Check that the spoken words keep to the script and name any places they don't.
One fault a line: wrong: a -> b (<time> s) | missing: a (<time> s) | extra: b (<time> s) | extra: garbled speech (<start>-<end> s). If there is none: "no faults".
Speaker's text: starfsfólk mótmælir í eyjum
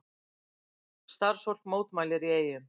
no faults